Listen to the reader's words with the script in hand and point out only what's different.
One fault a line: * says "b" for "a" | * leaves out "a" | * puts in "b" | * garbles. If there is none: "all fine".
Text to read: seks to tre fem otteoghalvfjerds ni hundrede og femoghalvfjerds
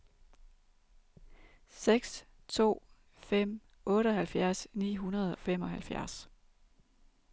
* leaves out "tre"
* leaves out "og"